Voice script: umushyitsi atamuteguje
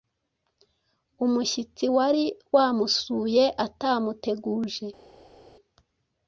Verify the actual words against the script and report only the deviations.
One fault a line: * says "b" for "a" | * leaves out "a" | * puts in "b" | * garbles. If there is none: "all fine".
* puts in "wari wamusuye"